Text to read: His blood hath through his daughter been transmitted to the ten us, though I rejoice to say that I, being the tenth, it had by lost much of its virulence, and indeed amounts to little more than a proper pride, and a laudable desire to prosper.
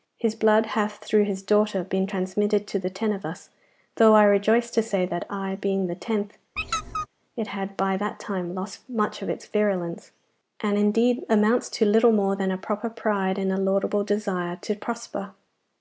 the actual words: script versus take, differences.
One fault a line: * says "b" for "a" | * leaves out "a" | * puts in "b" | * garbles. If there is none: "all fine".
* puts in "of"
* puts in "that time"